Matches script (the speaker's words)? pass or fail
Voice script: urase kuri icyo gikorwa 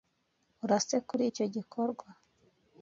pass